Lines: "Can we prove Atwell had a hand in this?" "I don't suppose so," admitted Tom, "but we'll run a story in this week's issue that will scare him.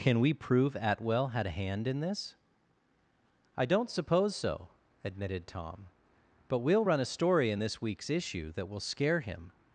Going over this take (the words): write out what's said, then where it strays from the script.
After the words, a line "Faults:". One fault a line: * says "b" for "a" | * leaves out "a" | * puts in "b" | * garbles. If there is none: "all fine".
"Can we prove Atwell had a hand in this?" "I don't suppose so," admitted Tom, "but we'll run a story in this week's issue that will scare him.
Faults:
all fine